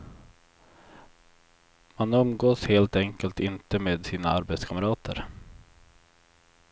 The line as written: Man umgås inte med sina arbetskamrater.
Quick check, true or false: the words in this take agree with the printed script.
false